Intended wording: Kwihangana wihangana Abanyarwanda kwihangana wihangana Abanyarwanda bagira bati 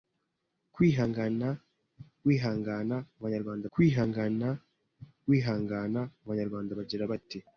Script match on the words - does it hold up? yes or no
yes